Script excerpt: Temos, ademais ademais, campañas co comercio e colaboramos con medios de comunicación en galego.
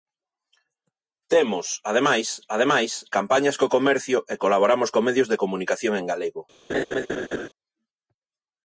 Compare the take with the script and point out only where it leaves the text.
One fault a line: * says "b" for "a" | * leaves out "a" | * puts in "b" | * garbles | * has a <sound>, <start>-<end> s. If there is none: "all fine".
* has a laugh, 6.7-7.5 s